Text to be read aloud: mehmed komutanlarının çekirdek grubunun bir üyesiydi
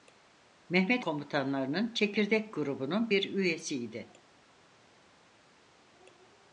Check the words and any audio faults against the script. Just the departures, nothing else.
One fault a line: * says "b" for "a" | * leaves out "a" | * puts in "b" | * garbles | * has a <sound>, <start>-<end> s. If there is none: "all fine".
all fine